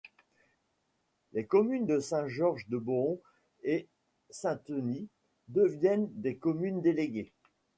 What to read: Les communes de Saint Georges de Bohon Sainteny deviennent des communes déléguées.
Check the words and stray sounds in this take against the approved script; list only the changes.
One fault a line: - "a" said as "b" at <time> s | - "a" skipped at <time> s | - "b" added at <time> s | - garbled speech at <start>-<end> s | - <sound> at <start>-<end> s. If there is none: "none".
- "et" added at 3.6 s